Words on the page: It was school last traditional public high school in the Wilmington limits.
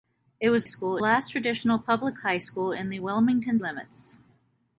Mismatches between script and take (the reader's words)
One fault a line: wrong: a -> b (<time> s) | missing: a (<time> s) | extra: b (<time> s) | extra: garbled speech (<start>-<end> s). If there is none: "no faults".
no faults